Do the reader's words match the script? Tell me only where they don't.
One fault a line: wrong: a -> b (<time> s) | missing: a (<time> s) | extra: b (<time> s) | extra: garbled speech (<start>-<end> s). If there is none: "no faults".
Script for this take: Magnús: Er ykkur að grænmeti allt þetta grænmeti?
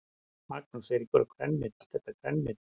no faults